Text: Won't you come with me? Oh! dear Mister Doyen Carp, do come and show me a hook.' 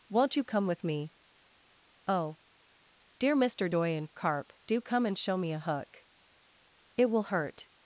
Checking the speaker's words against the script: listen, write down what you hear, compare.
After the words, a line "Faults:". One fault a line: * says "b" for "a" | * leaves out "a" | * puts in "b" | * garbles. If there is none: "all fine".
Won't you come with me? Oh! dear Mister Doyen Carp, do come and show me a hook.' 'It will hurt
Faults:
* puts in "It will hurt"